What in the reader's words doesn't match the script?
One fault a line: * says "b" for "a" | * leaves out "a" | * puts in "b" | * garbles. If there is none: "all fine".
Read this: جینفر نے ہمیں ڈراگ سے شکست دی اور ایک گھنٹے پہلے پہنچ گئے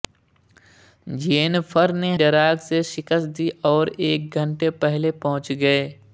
* leaves out "ہمیں"